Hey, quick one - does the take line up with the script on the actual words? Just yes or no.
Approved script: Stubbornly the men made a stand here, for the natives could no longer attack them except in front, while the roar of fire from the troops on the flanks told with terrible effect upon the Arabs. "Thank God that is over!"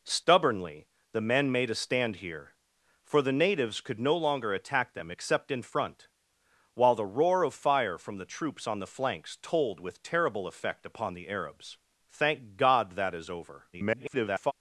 no